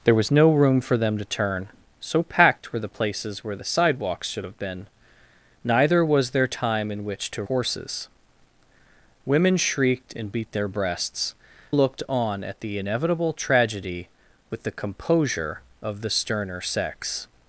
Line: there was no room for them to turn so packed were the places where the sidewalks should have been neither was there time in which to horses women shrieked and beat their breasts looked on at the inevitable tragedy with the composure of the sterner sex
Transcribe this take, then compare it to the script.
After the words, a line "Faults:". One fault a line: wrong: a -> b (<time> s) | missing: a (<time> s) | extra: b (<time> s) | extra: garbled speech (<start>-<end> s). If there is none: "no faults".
there was no room for them to turn so packed were the places where the sidewalks should have been neither was there time in which to horses women shrieked and beat their breasts looked on at the inevitable tragedy with the composure of the sterner sex
Faults:
no faults